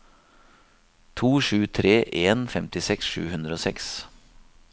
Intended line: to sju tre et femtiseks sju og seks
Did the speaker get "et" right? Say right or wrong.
wrong